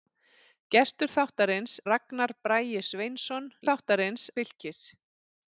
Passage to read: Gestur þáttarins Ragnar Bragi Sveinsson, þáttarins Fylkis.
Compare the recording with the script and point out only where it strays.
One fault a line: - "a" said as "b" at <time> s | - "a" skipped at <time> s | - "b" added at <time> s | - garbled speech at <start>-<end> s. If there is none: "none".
none